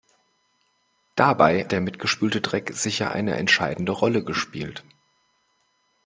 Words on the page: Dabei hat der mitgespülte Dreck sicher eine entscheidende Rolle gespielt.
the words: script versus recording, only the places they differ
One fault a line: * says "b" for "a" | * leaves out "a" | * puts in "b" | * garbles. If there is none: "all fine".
* leaves out "hat"